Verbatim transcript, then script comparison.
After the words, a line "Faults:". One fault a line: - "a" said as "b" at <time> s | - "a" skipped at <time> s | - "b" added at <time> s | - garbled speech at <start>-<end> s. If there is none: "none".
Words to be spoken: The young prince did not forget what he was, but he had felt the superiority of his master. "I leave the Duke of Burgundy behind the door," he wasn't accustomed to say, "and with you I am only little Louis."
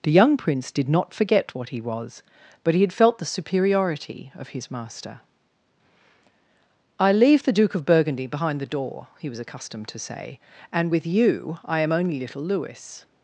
The young prince did not forget what he was, but he had felt the superiority of his master. "I leave the Duke of Burgundy behind the door," he was accustomed to say, "and with you I am only little Louis."
Faults:
- "wasn't" said as "was" at 9.3 s